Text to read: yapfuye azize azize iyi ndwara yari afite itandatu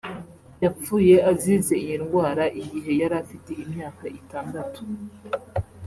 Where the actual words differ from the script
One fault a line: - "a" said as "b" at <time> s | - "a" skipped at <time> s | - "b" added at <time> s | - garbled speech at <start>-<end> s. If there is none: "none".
- "azize" skipped at 1.7 s
- "igihe" added at 2.6 s
- "imyaka" added at 3.6 s